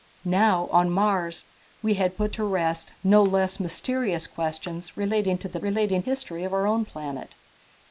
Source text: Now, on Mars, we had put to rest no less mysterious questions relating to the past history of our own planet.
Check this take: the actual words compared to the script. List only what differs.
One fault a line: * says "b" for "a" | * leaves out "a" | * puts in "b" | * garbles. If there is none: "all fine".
* says "relating" for "past"